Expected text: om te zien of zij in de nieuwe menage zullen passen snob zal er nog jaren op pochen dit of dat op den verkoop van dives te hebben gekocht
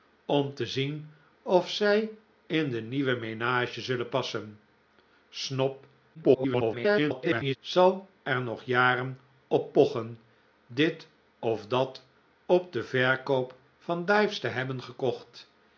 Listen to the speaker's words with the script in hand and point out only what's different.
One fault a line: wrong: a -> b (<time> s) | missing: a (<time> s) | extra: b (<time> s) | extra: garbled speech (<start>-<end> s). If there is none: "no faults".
extra: garbled speech (6.1-7.6 s)